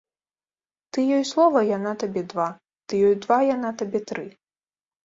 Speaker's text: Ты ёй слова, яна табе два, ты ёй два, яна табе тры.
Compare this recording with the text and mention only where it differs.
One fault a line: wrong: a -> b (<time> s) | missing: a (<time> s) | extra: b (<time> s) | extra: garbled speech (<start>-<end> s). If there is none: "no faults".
no faults